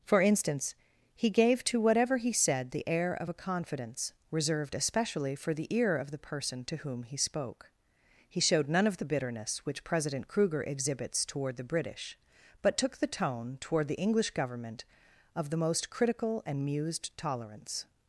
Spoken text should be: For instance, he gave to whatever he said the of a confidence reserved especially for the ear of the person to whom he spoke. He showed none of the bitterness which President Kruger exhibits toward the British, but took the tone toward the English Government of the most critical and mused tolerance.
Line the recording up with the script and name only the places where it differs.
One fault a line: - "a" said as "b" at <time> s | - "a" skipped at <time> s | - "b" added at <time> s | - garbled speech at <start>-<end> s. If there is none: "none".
- "air" added at 2.9 s